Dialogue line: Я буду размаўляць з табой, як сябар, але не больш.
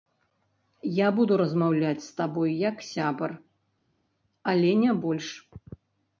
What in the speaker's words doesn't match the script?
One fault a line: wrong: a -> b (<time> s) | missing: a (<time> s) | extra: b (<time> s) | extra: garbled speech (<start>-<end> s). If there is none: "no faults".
no faults